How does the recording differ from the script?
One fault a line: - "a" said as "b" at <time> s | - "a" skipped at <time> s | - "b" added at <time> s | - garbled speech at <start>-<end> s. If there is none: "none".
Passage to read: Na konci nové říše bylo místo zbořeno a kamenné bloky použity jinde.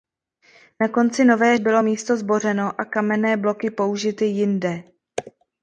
- "říše" skipped at 1.6 s